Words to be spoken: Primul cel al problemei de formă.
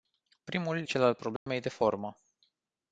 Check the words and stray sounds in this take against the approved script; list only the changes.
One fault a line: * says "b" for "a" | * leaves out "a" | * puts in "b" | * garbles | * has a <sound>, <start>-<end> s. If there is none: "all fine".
* has a dropout, 1.4-1.5 s